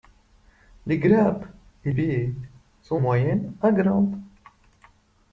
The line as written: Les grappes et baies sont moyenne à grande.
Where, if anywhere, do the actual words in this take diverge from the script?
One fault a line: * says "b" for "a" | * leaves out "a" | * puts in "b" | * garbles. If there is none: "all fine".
all fine